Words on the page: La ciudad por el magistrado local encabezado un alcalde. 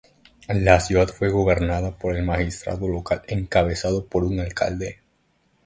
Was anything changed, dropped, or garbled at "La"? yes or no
no